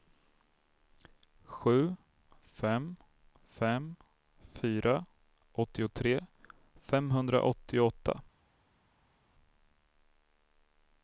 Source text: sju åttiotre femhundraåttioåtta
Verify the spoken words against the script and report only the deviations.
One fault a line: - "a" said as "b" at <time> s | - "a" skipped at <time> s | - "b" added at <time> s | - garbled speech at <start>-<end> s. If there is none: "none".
- "fem fem fyra" added at 2.4 s